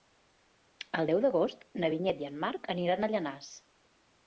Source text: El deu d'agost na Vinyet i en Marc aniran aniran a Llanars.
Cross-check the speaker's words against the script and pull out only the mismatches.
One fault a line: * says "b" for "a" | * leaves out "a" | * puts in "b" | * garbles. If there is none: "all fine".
* leaves out "aniran"